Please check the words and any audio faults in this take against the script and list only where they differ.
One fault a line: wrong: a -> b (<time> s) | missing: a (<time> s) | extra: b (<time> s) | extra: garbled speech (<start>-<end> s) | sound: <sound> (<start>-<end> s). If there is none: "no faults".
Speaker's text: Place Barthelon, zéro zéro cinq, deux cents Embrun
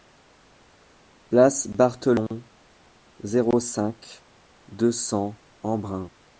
missing: zéro (3.6 s)